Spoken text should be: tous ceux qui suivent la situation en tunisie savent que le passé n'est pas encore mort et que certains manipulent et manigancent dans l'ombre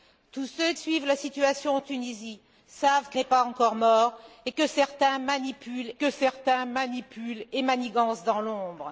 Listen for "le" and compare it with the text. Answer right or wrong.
wrong